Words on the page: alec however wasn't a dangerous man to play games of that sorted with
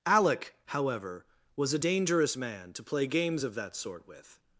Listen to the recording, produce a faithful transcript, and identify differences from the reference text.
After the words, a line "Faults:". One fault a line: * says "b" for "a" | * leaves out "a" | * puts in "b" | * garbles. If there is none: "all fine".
alec however was a dangerous man to play games of that sort with
Faults:
* says "was" for "wasn't"
* says "sort" for "sorted"